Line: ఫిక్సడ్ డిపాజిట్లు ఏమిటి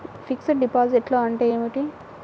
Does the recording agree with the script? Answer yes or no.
no